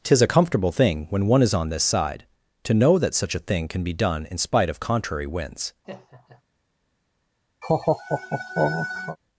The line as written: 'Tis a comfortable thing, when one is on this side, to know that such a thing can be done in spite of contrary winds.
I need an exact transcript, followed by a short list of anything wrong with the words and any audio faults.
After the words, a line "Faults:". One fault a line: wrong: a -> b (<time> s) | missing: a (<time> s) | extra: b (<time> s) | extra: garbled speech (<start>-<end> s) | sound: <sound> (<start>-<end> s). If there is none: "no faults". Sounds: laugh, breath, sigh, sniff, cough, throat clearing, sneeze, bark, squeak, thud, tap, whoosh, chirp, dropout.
'Tis a comfortable thing, when one is on this side, to know that such a thing can be done in spite of contrary winds.
Faults:
sound: laugh (5.8-6.4 s)
sound: laugh (7.6-9.2 s)